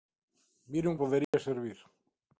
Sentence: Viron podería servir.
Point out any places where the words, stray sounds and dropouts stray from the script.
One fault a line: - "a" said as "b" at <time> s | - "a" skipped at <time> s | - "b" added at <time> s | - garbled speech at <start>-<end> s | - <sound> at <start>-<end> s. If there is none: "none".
- dropout at 1.2-1.3 s